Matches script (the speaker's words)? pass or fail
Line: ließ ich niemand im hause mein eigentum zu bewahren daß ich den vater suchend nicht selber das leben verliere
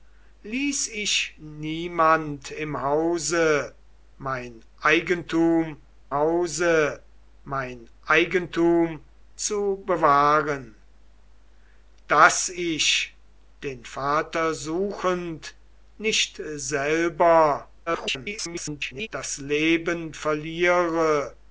fail